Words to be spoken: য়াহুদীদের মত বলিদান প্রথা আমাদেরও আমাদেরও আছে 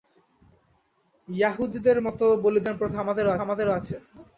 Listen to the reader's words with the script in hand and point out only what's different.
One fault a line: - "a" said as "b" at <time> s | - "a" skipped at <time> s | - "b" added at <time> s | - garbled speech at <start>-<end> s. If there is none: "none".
none